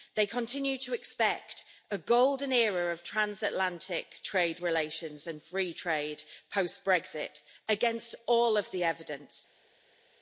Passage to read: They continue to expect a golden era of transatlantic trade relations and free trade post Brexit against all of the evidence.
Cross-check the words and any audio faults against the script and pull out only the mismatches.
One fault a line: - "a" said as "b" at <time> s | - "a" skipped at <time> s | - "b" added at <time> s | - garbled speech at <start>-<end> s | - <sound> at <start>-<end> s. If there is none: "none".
none